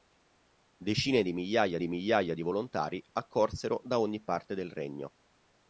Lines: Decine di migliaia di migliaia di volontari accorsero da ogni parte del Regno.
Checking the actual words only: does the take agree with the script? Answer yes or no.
yes